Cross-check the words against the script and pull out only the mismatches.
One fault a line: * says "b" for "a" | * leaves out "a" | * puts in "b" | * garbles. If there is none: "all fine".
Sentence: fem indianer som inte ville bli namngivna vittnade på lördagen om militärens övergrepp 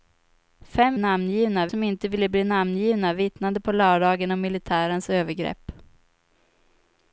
* says "namngivna" for "indianer"